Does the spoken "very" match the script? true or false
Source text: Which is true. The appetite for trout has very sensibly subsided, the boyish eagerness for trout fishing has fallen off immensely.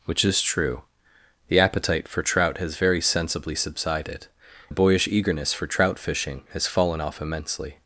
true